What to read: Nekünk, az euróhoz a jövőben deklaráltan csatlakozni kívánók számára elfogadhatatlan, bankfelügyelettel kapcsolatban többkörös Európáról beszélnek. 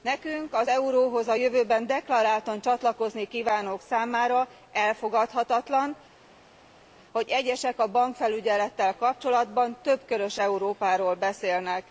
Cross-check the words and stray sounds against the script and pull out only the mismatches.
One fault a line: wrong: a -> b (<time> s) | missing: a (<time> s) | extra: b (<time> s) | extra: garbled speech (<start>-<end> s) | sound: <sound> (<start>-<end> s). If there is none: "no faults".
extra: hogy egyesek a (7.1 s)